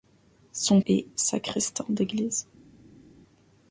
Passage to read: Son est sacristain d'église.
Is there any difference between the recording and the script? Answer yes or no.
no